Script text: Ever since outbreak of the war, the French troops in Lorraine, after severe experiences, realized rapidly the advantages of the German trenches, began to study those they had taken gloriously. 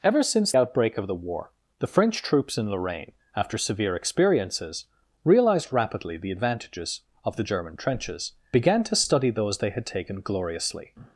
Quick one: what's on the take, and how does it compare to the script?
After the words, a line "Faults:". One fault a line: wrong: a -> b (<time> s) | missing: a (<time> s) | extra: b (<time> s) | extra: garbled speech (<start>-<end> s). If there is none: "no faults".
Ever since outbreak of the war, the French troops in Lorraine, after severe experiences, realized rapidly the advantages of the German trenches, began to study those they had taken gloriously.
Faults:
no faults